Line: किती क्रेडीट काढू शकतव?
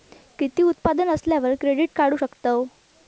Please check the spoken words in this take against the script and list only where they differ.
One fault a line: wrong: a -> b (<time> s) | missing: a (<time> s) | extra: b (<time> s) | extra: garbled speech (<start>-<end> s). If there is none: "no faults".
extra: उत्पन्न असल्यावर (0.6 s)